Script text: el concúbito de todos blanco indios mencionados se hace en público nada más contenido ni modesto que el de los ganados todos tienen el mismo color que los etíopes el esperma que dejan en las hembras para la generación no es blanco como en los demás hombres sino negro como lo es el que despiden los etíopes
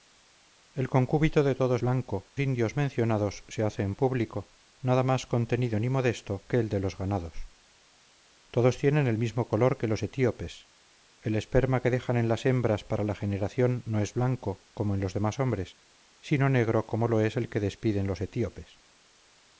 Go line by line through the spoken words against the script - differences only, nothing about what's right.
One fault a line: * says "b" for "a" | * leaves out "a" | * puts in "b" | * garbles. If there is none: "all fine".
all fine